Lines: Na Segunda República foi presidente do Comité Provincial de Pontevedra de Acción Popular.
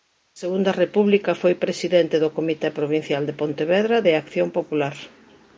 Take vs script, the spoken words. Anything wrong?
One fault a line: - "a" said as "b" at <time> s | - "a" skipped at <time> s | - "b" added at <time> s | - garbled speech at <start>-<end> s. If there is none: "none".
none